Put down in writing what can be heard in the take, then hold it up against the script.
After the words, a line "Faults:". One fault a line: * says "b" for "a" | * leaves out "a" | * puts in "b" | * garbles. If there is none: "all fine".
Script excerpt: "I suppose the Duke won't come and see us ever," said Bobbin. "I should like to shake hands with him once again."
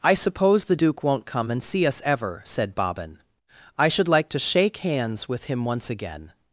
"I suppose the Duke won't come and see us ever," said Bobbin. "I should like to shake hands with him once again."
Faults:
all fine